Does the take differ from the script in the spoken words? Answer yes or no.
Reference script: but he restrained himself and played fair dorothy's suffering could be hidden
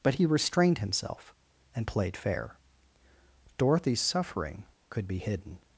no